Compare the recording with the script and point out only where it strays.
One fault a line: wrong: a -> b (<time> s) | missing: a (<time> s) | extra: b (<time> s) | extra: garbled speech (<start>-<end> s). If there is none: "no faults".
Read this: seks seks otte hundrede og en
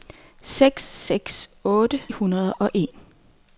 no faults